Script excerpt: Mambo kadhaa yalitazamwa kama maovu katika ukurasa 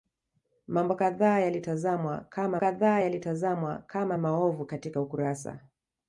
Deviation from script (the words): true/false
true